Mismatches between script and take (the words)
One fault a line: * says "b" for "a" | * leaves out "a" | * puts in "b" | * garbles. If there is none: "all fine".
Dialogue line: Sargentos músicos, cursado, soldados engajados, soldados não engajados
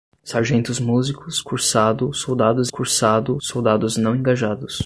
* says "cursado" for "engajados"